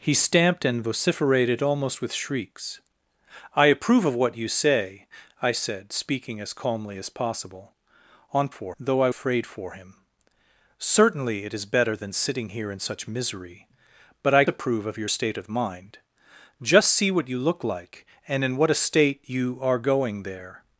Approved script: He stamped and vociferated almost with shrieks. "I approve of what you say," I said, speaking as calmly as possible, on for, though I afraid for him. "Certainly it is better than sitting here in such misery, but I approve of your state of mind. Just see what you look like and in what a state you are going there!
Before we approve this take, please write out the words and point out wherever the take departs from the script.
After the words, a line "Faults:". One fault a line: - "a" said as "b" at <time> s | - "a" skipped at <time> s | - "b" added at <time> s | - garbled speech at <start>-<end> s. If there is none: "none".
He stamped and vociferated almost with shrieks. "I approve of what you say," I said, speaking as calmly as possible, on for, though I afraid for him. "Certainly it is better than sitting here in such misery, but I approve of your state of mind. Just see what you look like and in what a state you are going there!
Faults:
none